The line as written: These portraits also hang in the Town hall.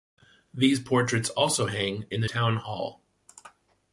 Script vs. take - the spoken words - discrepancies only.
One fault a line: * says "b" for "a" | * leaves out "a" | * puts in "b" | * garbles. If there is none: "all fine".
all fine